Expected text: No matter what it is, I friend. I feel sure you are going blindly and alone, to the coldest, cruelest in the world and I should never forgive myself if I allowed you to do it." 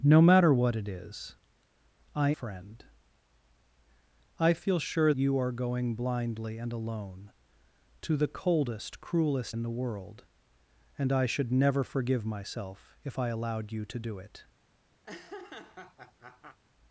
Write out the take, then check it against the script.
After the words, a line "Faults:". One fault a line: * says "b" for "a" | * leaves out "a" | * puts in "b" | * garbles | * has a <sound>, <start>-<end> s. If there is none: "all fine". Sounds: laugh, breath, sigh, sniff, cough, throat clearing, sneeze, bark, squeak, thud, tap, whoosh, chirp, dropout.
No matter what it is, I friend. I feel sure you are going blindly and alone, to the coldest, cruelest in the world and I should never forgive myself if I allowed you to do it."
Faults:
* has a laugh, 15.0-16.6 s